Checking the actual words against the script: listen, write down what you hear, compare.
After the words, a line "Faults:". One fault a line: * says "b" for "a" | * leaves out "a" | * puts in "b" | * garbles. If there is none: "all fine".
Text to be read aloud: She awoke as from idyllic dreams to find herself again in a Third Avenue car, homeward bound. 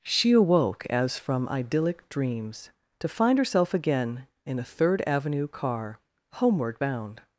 She awoke as from idyllic dreams to find herself again in a Third Avenue car, homeward bound.
Faults:
all fine